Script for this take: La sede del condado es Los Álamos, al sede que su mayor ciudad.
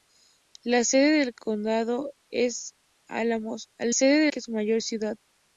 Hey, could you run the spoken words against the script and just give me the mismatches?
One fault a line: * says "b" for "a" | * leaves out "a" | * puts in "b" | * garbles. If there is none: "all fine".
all fine